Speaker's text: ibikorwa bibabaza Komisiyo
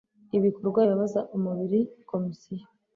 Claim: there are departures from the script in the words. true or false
true